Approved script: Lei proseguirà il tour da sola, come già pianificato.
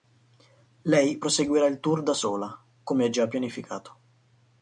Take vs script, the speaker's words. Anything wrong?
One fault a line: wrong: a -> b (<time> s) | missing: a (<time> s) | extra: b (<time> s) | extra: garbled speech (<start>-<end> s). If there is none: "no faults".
no faults